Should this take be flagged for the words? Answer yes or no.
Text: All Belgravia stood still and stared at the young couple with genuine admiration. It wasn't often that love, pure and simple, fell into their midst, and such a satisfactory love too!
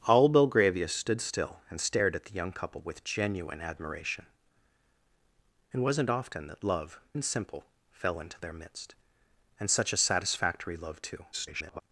yes